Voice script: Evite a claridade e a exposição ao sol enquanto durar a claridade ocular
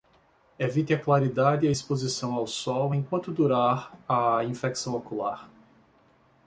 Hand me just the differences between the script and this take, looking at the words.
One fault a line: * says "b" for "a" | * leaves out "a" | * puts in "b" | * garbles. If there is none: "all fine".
* says "infecção" for "claridade"